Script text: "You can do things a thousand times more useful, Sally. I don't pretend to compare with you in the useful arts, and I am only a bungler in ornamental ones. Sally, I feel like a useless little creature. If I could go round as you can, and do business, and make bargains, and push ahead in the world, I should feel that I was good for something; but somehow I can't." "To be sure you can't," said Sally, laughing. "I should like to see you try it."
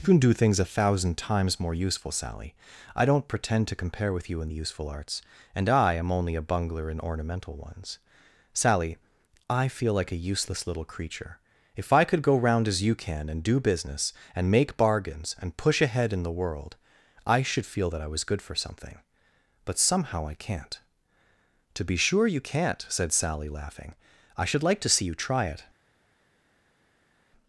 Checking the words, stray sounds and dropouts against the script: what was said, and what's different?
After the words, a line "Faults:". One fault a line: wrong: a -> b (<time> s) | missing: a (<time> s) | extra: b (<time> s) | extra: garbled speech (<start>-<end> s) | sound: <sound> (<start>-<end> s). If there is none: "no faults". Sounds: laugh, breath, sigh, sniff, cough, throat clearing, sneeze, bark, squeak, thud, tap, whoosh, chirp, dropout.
"You can do things a thousand times more useful, Sally. I don't pretend to compare with you in the useful arts, and I am only a bungler in ornamental ones. Sally, I feel like a useless little creature. If I could go round as you can, and do business, and make bargains, and push ahead in the world, I should feel that I was good for something; but somehow I can't." "To be sure you can't," said Sally, laughing. "I should like to see you try it."
Faults:
no faults